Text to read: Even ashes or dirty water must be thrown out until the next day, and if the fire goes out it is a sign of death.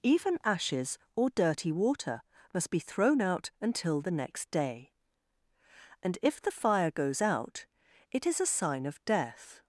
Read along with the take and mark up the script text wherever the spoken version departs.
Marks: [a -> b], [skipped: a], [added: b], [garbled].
Even ashes or dirty water must be thrown out until the next day, and if the fire goes out it is a sign of death.